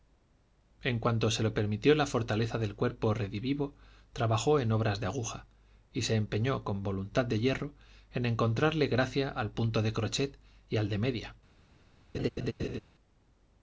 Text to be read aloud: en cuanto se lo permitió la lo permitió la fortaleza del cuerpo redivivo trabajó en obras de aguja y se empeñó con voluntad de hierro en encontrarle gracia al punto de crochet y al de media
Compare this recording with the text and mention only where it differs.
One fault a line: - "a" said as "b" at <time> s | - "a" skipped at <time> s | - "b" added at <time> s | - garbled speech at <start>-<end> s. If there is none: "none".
- "lo permitió la" skipped at 2.1 s